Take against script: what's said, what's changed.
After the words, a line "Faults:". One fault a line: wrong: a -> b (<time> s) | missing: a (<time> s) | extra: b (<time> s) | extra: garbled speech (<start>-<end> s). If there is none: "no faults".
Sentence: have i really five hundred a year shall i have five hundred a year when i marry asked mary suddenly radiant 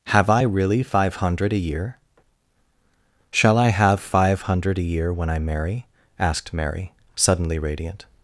have i really five hundred a year shall i have five hundred a year when i marry asked mary suddenly radiant
Faults:
no faults